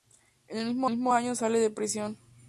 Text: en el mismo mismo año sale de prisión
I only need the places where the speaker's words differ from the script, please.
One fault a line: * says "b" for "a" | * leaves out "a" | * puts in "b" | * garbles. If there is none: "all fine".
all fine